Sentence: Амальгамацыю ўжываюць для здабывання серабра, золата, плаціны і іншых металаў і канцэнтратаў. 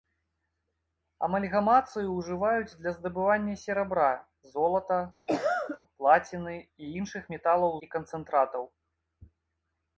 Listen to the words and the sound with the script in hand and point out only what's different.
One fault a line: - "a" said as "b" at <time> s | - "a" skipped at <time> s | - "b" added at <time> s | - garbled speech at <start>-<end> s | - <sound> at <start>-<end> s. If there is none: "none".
- cough at 5.3-5.8 s